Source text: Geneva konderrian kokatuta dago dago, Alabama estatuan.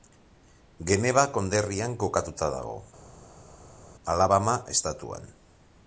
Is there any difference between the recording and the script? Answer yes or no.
yes